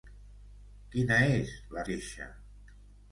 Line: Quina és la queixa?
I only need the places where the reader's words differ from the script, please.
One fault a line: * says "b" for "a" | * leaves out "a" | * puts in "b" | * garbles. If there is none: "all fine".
all fine